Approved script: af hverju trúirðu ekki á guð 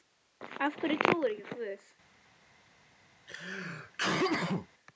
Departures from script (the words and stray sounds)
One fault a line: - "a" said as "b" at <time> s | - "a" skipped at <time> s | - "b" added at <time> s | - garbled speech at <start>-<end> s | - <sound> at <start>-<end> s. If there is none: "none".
- sneeze at 3.3-4.7 s